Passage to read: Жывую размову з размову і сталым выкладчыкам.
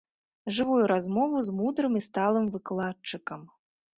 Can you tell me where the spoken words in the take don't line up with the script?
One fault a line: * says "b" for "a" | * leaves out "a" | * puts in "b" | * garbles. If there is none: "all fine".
* says "мудрым" for "размову"